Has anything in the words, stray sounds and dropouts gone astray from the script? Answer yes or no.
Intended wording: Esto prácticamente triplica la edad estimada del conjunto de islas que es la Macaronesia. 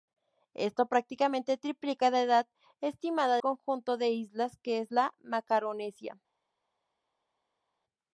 yes